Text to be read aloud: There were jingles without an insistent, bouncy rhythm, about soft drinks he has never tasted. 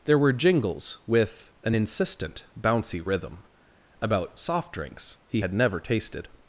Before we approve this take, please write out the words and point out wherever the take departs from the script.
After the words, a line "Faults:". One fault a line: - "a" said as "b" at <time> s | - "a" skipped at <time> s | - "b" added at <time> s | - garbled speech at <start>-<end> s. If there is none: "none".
There were jingles with an insistent, bouncy rhythm, about soft drinks he had never tasted.
Faults:
- "without" said as "with" at 1.1 s
- "has" said as "had" at 5.4 s